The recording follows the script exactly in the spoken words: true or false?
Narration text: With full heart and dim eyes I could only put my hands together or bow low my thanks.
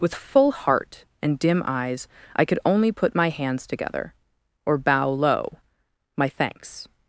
true